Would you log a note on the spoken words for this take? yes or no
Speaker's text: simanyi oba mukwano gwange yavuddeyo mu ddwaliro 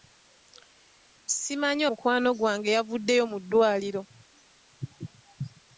yes